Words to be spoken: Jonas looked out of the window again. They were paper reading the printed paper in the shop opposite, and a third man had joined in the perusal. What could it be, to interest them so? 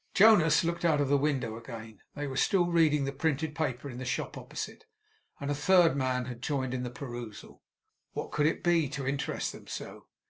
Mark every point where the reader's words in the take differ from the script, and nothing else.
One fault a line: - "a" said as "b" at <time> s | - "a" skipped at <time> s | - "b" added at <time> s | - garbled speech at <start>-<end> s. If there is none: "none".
- "paper" said as "still" at 2.4 s